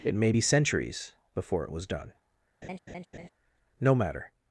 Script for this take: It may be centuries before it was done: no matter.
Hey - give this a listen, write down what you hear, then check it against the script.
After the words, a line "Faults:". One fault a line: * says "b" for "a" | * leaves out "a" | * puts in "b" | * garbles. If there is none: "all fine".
It may be centuries before it was done: no matter.
Faults:
all fine